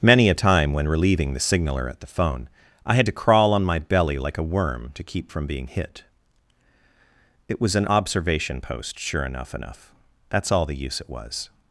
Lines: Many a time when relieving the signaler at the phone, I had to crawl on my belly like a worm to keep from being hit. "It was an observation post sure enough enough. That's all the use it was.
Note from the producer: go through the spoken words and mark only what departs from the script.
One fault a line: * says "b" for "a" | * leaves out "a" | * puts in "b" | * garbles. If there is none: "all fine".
all fine